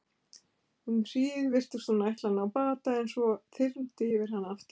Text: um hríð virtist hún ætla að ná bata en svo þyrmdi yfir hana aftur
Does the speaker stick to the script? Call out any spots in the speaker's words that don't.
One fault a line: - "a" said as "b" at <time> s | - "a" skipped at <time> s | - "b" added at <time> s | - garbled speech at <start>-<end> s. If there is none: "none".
none